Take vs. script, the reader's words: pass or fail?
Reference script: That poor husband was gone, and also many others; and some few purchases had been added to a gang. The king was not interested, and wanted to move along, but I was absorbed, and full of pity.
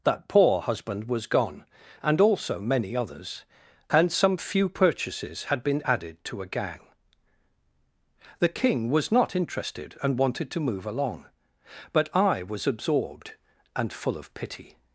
pass